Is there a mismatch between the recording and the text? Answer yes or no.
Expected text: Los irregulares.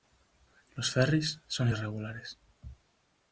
yes